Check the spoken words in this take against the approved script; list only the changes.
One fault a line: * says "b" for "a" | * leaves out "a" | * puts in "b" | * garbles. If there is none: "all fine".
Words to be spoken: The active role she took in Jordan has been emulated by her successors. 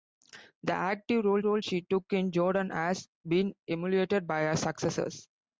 * puts in "role"